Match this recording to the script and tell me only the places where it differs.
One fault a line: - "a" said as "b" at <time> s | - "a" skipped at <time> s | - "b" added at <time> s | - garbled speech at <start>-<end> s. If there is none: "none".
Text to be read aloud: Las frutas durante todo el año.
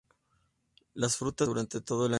none